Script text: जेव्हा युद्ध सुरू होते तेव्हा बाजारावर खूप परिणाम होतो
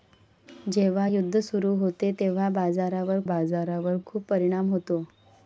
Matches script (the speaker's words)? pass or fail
fail